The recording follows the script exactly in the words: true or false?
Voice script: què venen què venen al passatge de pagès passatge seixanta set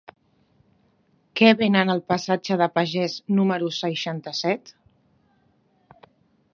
false